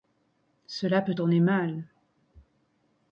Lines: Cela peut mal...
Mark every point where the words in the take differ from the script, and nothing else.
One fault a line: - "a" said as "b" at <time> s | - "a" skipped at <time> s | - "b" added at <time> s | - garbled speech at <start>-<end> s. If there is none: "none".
- "tourner" added at 1.1 s